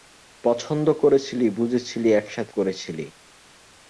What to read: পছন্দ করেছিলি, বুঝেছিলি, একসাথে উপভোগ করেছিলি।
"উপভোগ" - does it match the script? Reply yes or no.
no